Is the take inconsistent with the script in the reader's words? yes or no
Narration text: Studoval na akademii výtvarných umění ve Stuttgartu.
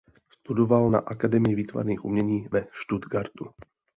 no